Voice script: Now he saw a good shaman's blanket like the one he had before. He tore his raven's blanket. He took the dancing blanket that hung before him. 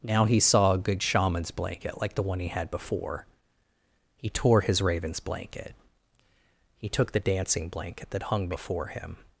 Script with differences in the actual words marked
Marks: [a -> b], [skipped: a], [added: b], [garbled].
Now he saw a good shaman's blanket like the one he had before. He tore his raven's blanket. He took the dancing blanket that hung before him.